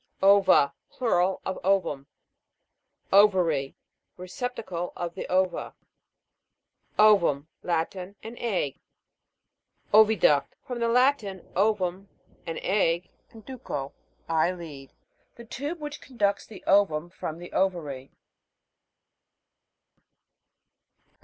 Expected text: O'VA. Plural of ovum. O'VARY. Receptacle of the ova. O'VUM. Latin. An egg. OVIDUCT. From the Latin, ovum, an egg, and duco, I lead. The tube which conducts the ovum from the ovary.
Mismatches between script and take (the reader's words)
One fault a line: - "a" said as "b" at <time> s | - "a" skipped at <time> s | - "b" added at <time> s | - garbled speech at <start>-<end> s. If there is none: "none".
none